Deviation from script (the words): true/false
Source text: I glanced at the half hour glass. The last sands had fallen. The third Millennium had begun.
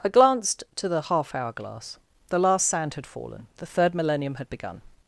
true